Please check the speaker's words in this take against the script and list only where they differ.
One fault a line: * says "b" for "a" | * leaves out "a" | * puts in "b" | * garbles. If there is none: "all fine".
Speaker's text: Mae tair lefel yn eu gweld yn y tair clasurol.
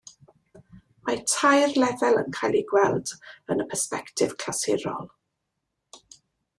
* puts in "cael"
* says "persbectif" for "tair"